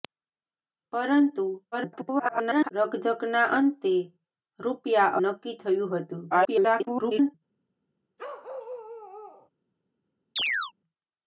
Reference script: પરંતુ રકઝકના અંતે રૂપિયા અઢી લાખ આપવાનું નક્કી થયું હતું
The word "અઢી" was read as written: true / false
false